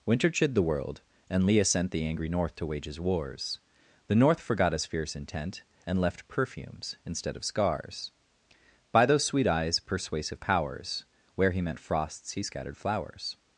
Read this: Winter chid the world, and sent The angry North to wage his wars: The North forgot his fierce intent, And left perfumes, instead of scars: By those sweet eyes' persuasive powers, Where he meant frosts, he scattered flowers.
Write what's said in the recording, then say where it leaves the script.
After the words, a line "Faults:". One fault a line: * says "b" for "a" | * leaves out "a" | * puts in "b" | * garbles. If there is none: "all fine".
Winter chid the world, and leah sent The angry North to wage his wars: The North forgot his fierce intent, And left perfumes, instead of scars: By those sweet eyes' persuasive powers, Where he meant frosts, he scattered flowers.
Faults:
* puts in "leah"